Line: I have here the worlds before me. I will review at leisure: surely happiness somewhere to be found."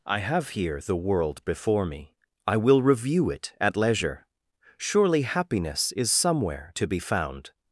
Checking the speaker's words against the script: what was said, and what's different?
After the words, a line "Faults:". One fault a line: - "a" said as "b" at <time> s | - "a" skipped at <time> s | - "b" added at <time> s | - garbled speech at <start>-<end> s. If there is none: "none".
I have here the world before me. I will review it at leisure: surely happiness is somewhere to be found."
Faults:
- "worlds" said as "world" at 1.0 s
- "it" added at 3.3 s
- "is" added at 5.9 s